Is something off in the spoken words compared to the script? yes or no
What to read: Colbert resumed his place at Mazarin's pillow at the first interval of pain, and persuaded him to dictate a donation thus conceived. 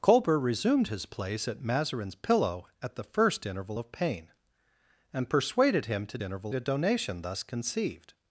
yes